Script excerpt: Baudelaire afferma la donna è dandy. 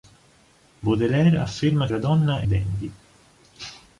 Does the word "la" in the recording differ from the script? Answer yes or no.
no